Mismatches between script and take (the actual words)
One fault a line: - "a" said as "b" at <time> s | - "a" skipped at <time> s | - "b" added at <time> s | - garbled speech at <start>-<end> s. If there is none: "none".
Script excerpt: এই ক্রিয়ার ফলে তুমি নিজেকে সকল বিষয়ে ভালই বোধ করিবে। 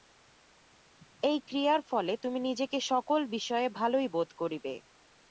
none